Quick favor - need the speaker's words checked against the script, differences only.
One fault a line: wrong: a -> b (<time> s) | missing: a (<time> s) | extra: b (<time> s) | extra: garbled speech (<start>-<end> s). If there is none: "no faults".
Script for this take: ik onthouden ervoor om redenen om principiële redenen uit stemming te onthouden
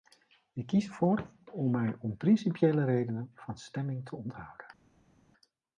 wrong: onthouden -> kies (0.7 s)
wrong: redenen -> mij (1.7 s)
wrong: uit -> van (3.3 s)